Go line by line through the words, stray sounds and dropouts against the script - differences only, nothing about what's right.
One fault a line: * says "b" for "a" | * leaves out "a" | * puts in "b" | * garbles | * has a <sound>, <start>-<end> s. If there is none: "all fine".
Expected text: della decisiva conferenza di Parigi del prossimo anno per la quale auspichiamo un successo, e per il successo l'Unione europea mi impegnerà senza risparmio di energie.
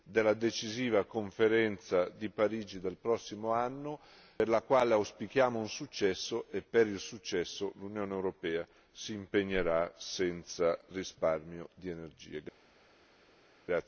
* says "si" for "mi"